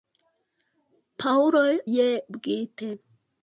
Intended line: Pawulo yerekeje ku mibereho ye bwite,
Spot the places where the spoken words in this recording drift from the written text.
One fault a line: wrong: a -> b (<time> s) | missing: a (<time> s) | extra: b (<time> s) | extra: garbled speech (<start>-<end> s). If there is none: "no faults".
missing: yerekeje ku mibereho (1.6 s)